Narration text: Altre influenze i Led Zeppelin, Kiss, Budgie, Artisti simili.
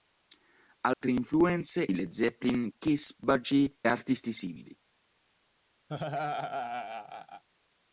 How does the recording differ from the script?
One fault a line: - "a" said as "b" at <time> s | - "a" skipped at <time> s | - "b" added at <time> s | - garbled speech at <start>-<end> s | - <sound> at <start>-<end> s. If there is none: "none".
- dropout at 0.9-1.0 s
- laugh at 5.9-7.4 s